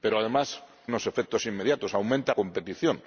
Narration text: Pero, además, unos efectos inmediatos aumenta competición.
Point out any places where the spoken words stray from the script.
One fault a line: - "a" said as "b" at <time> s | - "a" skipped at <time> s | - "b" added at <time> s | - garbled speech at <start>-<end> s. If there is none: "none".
none